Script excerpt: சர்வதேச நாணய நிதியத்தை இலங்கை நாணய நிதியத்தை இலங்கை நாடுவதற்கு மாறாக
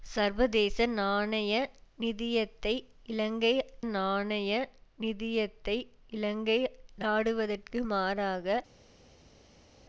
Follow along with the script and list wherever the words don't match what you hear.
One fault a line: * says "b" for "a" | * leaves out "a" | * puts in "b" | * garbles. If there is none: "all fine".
all fine